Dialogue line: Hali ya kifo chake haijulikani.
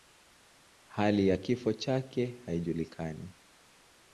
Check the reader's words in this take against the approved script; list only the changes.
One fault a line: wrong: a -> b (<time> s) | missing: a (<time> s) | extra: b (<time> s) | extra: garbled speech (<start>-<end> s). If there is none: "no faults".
no faults